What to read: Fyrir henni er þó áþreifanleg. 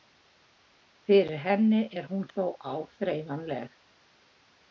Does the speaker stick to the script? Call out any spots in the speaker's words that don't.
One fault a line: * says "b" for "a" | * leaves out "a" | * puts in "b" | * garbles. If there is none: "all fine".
* puts in "hún"